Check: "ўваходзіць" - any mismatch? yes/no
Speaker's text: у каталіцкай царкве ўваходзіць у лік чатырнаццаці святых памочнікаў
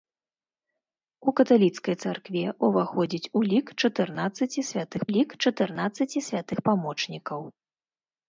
no